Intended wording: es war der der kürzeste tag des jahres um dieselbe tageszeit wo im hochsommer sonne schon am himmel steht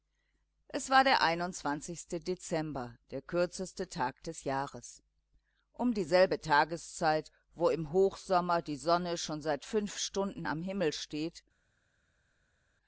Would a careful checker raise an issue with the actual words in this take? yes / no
yes